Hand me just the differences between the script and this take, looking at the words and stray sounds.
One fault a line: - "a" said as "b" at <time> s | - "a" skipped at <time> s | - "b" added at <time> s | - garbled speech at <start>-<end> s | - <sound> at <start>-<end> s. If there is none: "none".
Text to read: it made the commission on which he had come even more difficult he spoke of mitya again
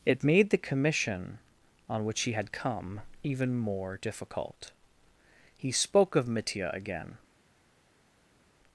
none